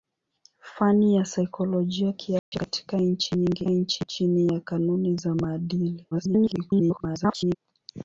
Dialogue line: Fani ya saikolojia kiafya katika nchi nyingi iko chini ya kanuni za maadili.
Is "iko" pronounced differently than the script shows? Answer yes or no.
yes